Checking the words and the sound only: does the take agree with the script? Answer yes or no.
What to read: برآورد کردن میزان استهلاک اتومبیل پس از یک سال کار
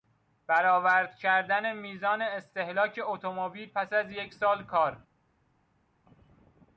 yes